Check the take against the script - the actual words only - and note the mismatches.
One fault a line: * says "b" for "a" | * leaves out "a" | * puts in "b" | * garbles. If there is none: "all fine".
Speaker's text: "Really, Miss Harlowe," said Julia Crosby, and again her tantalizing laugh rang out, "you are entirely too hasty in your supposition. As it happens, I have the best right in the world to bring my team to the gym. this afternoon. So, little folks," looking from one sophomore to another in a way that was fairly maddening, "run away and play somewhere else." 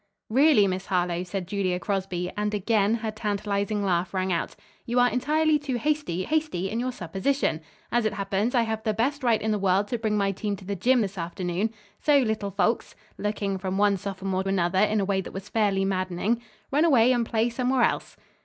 * puts in "hasty"
* leaves out "to"